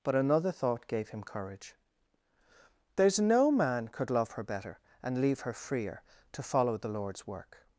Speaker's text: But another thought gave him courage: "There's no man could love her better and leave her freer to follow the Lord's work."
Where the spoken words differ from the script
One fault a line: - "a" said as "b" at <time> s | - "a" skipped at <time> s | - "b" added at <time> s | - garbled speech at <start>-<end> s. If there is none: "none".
none